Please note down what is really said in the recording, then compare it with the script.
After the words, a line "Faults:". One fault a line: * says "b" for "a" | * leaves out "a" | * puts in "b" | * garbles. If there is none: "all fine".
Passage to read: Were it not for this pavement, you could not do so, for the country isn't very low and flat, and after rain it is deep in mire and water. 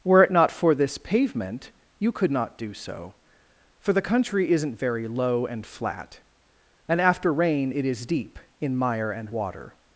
Were it not for this pavement, you could not do so, for the country isn't very low and flat, and after rain it is deep in mire and water.
Faults:
all fine